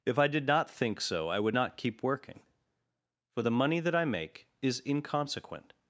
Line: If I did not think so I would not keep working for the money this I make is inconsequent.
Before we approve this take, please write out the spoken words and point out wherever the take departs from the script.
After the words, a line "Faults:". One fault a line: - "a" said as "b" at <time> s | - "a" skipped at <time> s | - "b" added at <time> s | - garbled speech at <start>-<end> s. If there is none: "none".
If I did not think so I would not keep working for the money that I make is inconsequent.
Faults:
- "this" said as "that" at 3.8 s